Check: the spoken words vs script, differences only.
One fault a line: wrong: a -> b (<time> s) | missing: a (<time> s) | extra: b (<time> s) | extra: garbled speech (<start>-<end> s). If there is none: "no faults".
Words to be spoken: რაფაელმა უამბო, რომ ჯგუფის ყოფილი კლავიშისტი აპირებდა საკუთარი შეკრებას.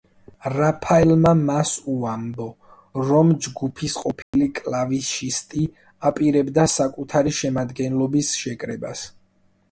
extra: მას (1.4 s)
extra: შემადგენლობის (7.4 s)